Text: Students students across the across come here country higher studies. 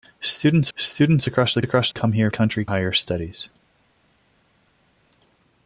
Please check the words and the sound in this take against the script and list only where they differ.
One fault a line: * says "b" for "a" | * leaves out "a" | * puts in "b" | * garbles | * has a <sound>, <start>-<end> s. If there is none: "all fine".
all fine